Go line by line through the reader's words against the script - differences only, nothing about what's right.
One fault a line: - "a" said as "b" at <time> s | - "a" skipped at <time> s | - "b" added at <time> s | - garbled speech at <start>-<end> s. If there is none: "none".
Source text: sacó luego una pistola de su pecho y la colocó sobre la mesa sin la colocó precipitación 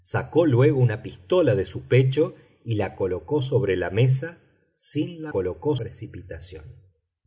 none